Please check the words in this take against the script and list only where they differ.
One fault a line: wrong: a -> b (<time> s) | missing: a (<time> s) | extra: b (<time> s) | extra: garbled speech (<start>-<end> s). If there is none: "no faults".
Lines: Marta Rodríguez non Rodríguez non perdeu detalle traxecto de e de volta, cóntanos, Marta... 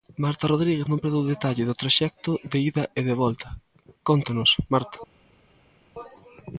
missing: Rodríguez non (1.0 s)
extra: do (1.7 s)
extra: ida (2.7 s)